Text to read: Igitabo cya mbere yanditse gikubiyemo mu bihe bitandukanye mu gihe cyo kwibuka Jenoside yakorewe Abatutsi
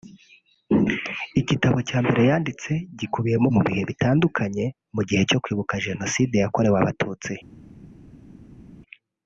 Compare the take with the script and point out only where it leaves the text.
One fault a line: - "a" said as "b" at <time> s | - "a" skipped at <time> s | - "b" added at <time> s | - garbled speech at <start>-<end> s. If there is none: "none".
none